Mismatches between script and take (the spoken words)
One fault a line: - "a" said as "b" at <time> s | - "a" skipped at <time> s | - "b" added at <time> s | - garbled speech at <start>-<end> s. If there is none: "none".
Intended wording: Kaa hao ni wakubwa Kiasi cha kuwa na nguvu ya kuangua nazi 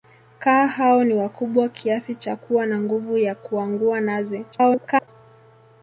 - garbled speech at 4.5-5.1 s